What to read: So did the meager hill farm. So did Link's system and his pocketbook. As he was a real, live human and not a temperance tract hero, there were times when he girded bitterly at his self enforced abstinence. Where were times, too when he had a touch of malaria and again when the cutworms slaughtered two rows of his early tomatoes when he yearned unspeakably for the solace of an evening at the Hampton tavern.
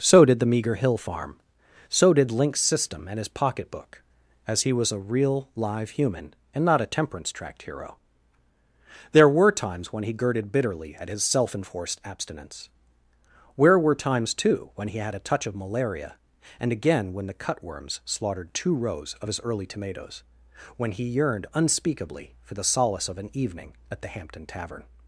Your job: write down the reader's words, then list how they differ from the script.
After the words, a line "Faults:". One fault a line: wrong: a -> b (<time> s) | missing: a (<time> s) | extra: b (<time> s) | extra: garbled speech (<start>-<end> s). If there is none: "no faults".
So did the meager hill farm. So did Link's system and his pocketbook. As he was a real, live human and not a temperance tract hero, there were times when he girded bitterly at his self enforced abstinence. Where were times, too when he had a touch of malaria and again when the cutworms slaughtered two rows of his early tomatoes when he yearned unspeakably for the solace of an evening at the Hampton tavern.
Faults:
no faults